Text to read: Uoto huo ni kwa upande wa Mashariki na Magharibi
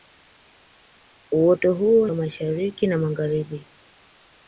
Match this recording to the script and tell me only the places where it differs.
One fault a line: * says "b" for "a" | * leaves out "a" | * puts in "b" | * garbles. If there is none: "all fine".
* leaves out "ni kwa upande"